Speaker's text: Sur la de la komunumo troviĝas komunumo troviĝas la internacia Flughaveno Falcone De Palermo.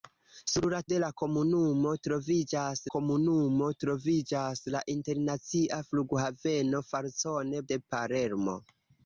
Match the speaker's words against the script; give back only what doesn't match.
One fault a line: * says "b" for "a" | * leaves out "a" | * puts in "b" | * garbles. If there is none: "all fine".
all fine